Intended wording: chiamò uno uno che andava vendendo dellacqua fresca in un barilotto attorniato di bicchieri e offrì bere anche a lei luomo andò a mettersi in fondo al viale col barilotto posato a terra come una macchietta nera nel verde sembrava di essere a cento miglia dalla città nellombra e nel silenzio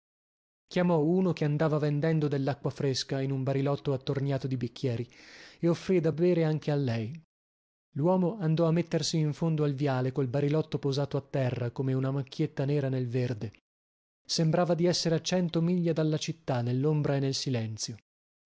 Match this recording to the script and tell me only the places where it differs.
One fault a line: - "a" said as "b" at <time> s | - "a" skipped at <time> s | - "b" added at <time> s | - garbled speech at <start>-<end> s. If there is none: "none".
- "uno" skipped at 1.3 s
- "da" added at 6.0 s